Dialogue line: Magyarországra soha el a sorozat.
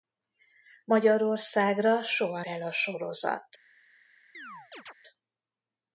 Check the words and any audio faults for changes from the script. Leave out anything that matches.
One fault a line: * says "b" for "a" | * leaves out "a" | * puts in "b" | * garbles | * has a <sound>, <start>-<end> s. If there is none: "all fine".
* has a chirp, 4.3-4.9 s